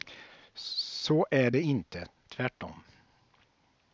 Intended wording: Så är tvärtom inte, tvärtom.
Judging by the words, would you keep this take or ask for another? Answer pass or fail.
fail